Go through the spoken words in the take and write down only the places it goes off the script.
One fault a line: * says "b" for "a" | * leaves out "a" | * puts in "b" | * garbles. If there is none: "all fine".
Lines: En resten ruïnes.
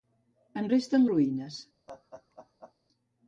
all fine